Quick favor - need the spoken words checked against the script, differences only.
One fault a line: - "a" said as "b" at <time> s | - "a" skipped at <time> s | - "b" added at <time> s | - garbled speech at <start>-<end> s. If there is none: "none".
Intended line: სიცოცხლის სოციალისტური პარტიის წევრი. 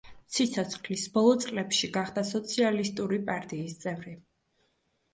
- "ბოლო წლებში გახდა" added at 1.2 s